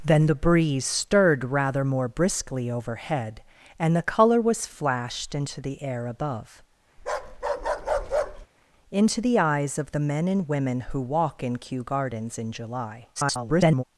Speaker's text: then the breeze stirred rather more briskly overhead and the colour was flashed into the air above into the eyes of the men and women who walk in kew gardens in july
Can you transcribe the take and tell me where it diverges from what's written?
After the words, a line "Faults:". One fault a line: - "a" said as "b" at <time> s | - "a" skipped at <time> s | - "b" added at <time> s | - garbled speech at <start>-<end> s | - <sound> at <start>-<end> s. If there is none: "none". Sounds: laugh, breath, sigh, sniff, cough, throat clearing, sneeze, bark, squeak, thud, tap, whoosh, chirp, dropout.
then the breeze stirred rather more briskly overhead and the colour was flashed into the air above into the eyes of the men and women who walk in kew gardens in july [garbled]
Faults:
- bark at 7.0-8.5 s
- garbled speech at 13.2-13.8 s